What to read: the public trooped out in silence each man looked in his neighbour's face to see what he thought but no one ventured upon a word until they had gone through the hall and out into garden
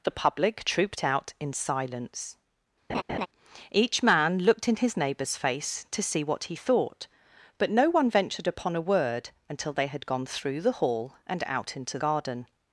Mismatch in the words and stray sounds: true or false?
true